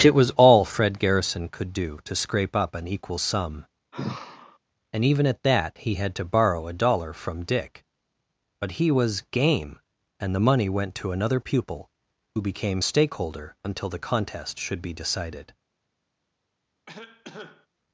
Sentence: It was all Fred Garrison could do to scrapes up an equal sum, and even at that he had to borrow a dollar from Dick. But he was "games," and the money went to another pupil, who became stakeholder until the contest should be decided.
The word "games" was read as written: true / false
false